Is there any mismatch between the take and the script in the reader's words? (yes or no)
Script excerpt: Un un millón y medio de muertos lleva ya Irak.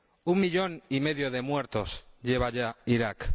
yes